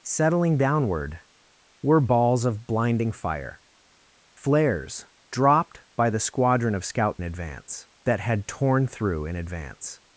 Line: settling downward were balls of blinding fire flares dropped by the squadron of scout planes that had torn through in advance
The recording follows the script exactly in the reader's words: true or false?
false